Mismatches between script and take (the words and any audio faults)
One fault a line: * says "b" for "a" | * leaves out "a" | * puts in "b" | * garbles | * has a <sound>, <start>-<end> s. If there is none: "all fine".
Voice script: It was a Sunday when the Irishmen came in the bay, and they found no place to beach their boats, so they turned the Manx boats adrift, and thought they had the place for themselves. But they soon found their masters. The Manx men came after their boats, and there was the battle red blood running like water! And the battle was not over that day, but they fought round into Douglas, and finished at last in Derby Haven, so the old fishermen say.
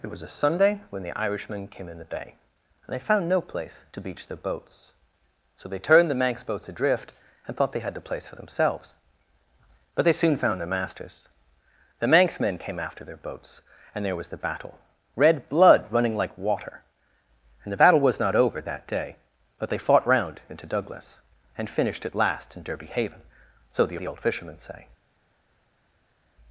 * puts in "the"